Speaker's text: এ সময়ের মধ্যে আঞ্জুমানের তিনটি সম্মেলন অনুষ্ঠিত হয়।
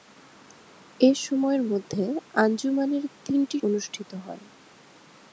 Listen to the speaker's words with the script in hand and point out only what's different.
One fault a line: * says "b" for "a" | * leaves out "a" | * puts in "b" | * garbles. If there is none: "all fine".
* leaves out "সম্মেলন"